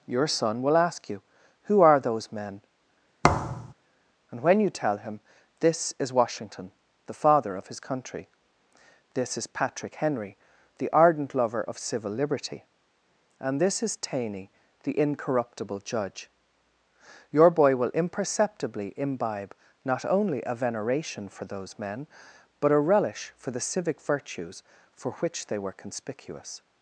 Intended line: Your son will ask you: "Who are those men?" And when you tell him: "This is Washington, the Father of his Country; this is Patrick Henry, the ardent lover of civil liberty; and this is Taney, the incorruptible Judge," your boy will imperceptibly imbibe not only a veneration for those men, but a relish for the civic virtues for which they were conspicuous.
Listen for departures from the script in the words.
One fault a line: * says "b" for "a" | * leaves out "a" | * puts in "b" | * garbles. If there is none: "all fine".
all fine